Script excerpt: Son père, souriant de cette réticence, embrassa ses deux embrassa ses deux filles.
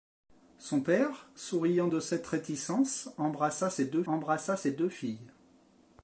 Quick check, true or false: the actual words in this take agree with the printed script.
true